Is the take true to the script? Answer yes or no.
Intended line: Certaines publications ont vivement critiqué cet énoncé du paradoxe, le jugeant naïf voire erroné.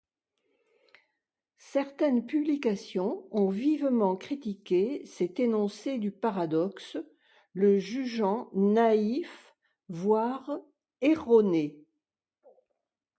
yes